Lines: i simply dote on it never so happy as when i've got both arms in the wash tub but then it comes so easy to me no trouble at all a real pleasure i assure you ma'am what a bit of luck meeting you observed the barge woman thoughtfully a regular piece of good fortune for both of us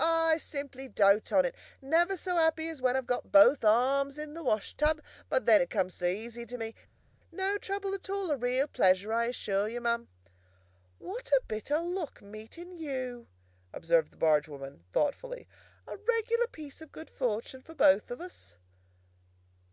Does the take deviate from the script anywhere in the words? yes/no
no